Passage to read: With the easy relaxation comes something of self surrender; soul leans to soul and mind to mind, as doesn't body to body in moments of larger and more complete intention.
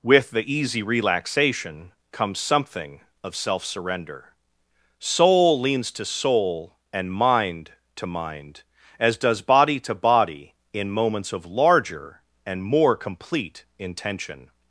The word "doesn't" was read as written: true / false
false